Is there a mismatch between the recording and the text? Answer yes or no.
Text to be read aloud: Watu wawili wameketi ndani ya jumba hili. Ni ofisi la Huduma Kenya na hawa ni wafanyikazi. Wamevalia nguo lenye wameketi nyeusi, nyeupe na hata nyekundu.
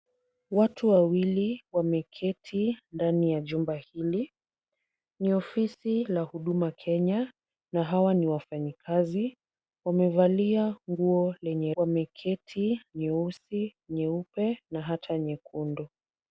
no